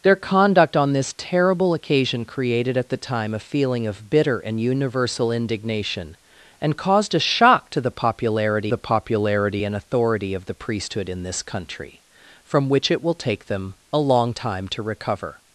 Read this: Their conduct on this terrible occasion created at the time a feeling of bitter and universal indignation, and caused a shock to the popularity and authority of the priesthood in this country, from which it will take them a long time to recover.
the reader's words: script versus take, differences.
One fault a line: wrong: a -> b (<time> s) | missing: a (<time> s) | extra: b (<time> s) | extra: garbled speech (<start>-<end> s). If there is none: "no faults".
extra: the popularity (8.7 s)